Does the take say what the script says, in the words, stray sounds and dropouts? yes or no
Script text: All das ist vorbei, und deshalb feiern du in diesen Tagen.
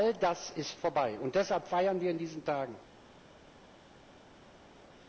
no